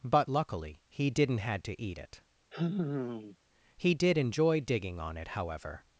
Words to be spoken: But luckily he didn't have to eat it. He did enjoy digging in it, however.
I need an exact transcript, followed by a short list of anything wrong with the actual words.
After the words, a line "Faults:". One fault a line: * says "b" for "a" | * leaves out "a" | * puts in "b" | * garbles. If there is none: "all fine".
But luckily he didn't had to eat it. He did enjoy digging on it, however.
Faults:
* says "had" for "have"
* says "on" for "in"